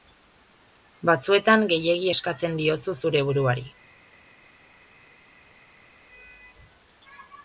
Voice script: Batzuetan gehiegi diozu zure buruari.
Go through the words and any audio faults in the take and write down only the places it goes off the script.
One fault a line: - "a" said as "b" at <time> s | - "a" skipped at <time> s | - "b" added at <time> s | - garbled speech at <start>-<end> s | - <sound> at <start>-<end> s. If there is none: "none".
- "eskatzen" added at 2.1 s